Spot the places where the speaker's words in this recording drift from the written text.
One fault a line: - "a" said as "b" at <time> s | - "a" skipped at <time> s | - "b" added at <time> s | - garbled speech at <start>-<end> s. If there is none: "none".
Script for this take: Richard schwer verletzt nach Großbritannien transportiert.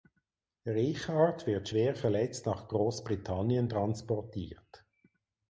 - "wird" added at 1.4 s